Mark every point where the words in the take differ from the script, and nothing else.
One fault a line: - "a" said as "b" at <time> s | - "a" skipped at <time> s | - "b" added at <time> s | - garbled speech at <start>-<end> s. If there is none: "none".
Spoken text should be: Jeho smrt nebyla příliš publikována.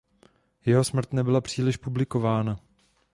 none